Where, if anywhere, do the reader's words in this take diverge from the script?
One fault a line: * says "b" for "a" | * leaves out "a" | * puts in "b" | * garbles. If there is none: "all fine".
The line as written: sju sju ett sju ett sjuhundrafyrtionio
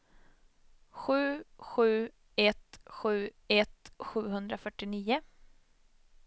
all fine